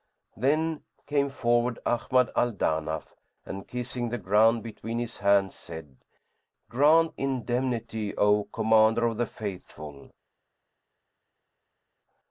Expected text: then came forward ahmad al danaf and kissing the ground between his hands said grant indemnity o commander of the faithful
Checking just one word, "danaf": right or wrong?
right